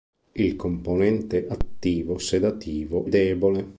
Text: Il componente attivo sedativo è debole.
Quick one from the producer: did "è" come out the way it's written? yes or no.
no